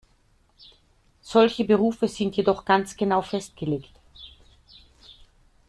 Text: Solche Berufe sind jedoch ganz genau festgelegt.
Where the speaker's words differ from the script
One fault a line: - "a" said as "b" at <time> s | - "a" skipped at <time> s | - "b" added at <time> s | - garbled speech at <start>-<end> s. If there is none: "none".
none